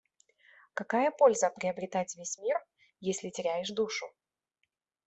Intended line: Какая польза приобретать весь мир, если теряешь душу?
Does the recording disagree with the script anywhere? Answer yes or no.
no